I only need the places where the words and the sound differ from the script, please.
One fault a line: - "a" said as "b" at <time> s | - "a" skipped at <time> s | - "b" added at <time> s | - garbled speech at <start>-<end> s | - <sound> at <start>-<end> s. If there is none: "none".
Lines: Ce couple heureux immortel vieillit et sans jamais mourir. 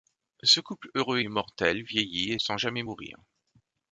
none